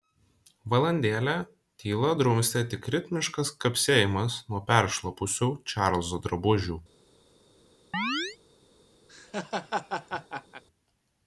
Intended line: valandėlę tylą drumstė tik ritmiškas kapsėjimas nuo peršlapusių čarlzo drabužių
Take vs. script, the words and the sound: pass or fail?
fail